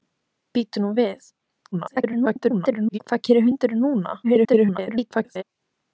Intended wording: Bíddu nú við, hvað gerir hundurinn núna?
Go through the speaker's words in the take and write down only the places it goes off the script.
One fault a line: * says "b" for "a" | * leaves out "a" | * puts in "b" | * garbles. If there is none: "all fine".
* garbles
* garbles